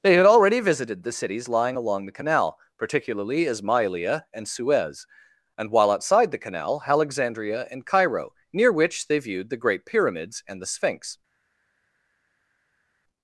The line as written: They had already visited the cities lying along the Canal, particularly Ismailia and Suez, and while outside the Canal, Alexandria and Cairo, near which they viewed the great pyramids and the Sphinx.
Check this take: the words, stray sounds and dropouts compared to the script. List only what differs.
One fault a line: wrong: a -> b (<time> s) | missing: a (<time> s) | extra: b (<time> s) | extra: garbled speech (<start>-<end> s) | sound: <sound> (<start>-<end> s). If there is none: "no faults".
no faults